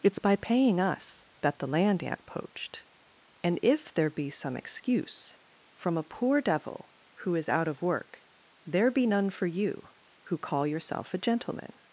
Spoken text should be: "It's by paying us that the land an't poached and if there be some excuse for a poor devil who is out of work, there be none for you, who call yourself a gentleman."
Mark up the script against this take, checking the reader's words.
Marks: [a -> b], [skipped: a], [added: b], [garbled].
"It's by paying us that the land an't poached and if there be some excuse [for -> from] a poor devil who is out of work, there be none for you, who call yourself a gentleman."